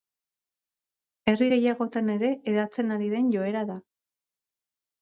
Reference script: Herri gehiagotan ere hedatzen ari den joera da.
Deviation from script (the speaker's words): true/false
false